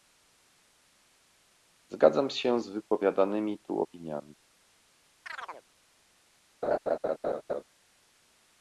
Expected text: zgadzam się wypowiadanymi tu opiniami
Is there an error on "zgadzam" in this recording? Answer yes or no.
no